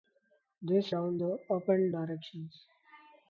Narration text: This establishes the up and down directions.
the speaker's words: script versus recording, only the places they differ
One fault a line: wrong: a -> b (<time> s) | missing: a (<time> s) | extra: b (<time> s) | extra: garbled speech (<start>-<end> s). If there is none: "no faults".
wrong: establishes -> down (0.9 s)
missing: down (1.9 s)